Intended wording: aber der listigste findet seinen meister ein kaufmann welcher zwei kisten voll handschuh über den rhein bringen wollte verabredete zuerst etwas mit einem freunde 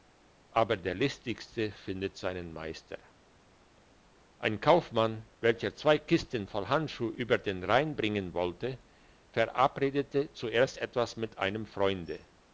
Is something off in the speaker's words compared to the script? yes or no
no